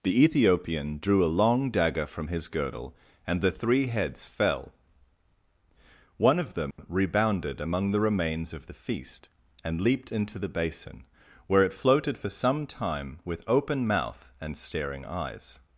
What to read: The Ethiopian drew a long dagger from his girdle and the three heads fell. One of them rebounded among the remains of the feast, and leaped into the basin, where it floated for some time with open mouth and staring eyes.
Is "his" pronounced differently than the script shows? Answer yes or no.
no